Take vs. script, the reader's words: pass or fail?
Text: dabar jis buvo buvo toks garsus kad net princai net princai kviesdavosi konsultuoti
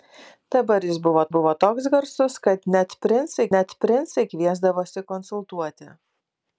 pass